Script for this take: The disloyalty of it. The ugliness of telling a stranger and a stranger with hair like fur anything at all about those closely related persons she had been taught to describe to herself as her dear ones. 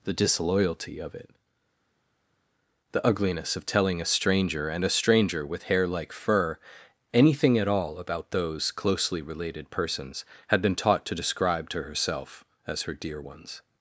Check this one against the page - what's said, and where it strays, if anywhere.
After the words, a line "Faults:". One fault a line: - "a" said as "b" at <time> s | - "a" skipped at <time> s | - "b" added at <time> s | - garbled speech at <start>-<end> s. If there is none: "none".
The disloyalty of it. The ugliness of telling a stranger and a stranger with hair like fur anything at all about those closely related persons had been taught to describe to herself as her dear ones.
Faults:
- "she" skipped at 10.3 s